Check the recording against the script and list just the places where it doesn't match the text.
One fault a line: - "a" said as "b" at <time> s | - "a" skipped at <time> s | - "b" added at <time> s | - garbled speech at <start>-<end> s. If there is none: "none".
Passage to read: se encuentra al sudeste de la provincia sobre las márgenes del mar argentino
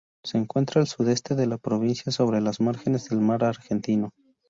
none